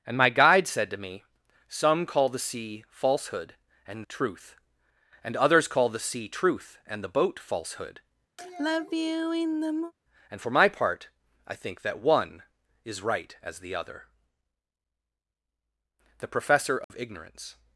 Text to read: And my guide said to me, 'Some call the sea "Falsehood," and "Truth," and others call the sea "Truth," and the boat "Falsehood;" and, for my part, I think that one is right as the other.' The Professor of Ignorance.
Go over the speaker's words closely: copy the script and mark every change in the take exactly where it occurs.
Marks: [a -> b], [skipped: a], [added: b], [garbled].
And my guide said to me, 'Some call the sea "Falsehood," and "Truth," and others call the sea "Truth," and the boat "Falsehood;" and, for my part, I think that one is right as the other.' The Professor of Ignorance.